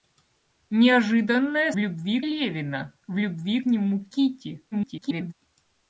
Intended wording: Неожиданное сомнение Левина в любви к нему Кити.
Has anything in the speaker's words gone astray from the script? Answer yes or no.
yes